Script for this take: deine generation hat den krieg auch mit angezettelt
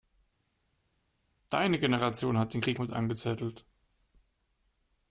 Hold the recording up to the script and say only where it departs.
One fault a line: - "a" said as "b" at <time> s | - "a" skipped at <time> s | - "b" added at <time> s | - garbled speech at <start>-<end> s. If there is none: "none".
- "auch" skipped at 2.8 s